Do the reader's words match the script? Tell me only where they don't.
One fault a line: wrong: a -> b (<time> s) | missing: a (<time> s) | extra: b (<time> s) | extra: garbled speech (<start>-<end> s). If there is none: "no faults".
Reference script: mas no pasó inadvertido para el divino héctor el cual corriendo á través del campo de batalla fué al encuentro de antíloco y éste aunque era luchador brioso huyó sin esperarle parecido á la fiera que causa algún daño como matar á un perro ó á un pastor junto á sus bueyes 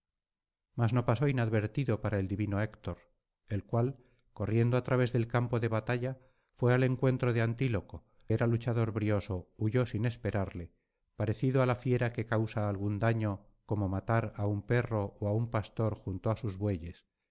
missing: y éste aunque (8.1 s)